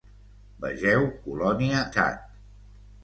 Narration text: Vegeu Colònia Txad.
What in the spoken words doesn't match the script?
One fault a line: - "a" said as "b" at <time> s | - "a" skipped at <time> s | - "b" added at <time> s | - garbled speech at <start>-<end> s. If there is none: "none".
none